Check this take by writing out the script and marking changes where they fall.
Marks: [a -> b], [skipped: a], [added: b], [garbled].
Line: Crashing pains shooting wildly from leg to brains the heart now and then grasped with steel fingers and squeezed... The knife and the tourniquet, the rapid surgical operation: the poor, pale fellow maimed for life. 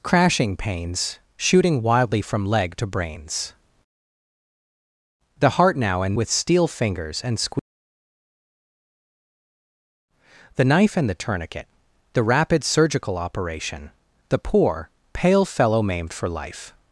Crashing pains shooting wildly from leg to brains the heart now and [skipped: then grasped] with steel fingers and squeezed... The knife and the tourniquet, the rapid surgical operation: the poor, pale fellow maimed for life.